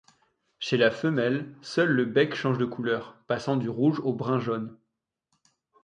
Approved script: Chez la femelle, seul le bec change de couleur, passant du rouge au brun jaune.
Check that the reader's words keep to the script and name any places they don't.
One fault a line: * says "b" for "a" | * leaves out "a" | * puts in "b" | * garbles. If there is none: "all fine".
all fine